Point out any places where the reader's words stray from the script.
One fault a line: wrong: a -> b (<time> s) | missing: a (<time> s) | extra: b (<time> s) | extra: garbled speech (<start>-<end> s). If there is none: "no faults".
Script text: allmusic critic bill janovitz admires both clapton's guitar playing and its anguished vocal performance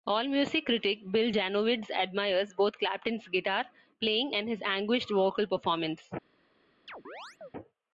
wrong: its -> his (4.5 s)